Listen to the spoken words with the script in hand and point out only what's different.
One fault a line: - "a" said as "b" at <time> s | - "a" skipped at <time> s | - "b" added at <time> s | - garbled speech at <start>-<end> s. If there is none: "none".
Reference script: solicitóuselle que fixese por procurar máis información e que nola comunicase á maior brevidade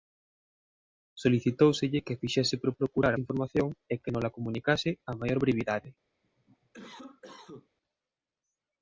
- "máis" skipped at 3.1 s